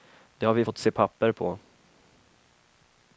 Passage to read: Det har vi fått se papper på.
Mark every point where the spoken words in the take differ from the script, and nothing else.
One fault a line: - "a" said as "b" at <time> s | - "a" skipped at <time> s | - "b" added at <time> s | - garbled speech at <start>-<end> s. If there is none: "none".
none